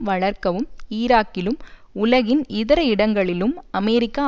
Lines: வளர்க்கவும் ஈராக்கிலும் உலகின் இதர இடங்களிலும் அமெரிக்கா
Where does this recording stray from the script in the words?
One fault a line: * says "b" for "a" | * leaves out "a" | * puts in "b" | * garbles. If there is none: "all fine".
all fine